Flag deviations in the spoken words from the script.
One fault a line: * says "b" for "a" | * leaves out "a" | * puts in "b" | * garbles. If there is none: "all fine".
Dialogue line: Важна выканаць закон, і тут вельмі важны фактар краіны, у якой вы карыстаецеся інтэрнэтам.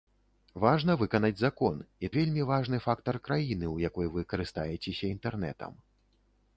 * leaves out "тут"